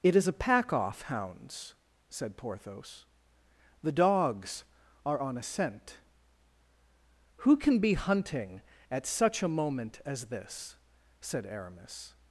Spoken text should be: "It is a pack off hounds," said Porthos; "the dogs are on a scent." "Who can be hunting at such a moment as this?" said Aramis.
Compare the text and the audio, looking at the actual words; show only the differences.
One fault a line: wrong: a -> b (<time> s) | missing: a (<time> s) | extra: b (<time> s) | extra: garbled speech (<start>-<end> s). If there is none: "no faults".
no faults